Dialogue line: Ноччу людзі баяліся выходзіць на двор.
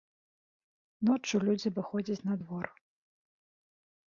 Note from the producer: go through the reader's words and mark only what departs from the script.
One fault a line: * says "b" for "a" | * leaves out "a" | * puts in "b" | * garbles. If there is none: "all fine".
* leaves out "баяліся"